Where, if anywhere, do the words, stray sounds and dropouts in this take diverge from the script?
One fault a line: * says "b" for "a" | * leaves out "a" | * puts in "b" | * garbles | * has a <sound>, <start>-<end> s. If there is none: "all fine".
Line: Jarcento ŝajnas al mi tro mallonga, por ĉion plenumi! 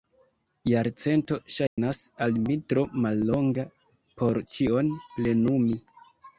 * has a dropout, 1.7-1.8 s